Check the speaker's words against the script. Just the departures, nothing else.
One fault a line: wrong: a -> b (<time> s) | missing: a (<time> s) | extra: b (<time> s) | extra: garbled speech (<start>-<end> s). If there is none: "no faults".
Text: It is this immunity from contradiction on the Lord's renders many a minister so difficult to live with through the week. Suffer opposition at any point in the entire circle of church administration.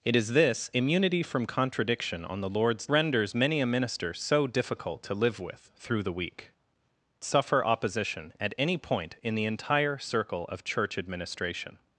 no faults